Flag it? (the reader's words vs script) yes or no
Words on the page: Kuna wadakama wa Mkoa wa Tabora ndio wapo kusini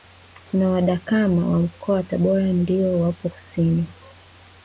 no